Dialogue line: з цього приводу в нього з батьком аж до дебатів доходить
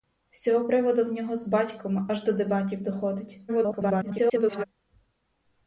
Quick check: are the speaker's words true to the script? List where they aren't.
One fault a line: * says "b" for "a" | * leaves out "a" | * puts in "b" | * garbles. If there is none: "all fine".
* garbles